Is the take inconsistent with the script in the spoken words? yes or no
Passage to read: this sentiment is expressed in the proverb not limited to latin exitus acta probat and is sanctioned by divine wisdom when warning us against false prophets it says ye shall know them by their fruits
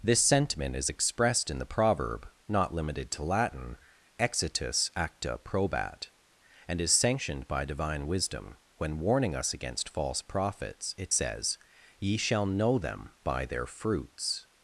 no